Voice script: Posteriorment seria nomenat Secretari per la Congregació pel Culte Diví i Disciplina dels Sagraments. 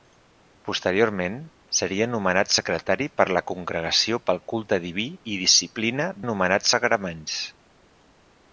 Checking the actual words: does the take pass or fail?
fail